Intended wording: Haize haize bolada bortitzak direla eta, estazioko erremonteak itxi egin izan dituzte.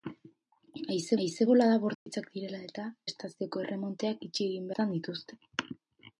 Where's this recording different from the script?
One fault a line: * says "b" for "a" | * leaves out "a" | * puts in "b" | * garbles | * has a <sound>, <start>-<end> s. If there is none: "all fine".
* has a dropout, 1.9-2.1 s